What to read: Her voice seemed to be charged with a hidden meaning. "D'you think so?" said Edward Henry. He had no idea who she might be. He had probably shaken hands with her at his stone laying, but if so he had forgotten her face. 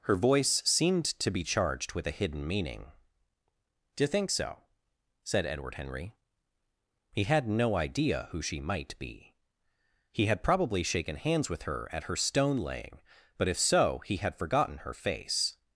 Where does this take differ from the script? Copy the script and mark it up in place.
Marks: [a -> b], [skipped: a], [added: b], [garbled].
Her voice seemed to be charged with a hidden meaning. "D'you think so?" said Edward Henry. He had no idea who she might be. He had probably shaken hands with her at [his -> her] stone laying, but if so he had forgotten her face.